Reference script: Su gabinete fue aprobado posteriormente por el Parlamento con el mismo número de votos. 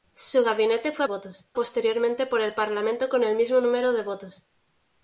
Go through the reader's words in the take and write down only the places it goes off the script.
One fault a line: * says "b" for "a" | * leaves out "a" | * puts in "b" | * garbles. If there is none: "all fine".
* says "votos" for "aprobado"